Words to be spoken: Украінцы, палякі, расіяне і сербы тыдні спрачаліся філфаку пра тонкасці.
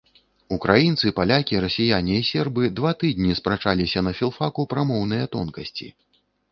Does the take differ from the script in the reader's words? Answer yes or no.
yes